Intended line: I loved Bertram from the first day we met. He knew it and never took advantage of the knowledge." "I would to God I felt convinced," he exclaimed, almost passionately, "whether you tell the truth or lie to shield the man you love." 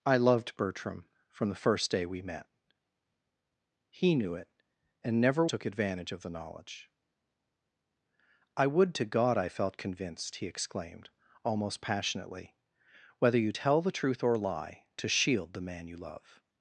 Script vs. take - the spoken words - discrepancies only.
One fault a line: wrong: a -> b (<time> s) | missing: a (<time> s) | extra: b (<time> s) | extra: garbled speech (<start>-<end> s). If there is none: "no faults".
no faults